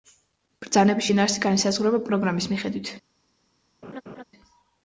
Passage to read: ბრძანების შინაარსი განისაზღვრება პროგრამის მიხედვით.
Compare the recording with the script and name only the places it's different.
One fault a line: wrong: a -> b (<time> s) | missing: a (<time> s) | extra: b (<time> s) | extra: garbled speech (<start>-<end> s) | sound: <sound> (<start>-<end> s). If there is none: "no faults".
sound: laugh (3.8-4.2 s)